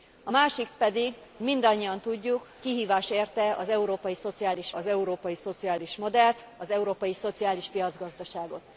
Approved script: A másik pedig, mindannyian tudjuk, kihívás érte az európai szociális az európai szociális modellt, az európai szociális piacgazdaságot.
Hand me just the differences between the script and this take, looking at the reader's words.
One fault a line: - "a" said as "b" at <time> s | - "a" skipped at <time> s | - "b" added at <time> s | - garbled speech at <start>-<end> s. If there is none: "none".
none